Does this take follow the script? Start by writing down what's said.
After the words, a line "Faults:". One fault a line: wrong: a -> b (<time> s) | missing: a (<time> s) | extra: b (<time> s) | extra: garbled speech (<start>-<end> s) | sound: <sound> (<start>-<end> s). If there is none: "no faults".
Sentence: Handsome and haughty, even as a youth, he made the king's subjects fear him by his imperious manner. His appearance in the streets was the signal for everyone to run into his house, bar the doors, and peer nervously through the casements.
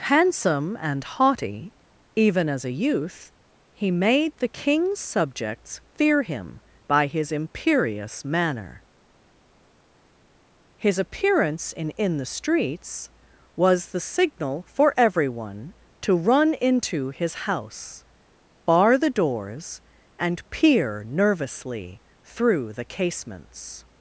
Handsome and haughty, even as a youth, he made the king's subjects fear him by his imperious manner. His appearance in in the streets was the signal for everyone to run into his house, bar the doors, and peer nervously through the casements.
Faults:
extra: in (11.9 s)